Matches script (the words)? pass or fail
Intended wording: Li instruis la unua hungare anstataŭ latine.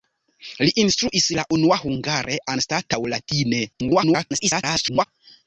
fail